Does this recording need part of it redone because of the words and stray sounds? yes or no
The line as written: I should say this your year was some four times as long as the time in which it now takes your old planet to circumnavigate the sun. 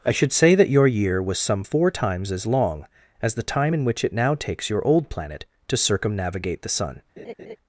yes